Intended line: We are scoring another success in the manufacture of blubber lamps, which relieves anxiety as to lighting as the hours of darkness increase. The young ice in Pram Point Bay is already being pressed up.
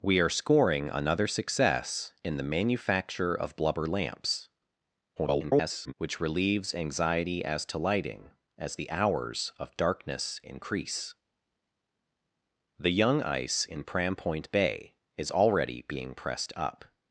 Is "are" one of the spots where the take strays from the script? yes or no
no